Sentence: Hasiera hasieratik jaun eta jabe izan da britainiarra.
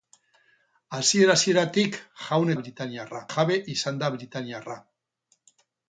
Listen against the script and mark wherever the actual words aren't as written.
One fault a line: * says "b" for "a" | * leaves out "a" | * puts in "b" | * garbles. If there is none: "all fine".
* says "britainiarra" for "eta"